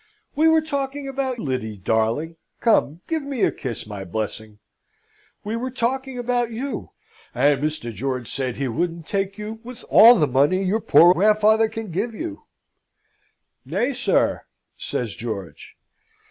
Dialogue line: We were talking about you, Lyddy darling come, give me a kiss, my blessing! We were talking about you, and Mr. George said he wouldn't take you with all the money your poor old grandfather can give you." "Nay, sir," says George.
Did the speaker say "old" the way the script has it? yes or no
no